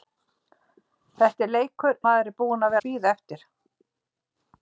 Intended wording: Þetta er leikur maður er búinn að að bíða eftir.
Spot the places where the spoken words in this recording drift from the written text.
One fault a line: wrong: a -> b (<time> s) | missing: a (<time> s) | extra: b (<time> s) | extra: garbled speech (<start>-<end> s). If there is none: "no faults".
no faults